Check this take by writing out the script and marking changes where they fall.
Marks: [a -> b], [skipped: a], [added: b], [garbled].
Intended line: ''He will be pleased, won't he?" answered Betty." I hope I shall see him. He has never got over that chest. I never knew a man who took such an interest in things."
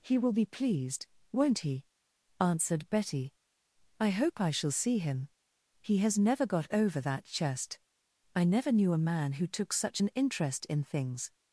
''He will be pleased, won't he?" answered Betty." I hope I shall see him. He has never got over that chest. I never knew a man who took such an interest in things."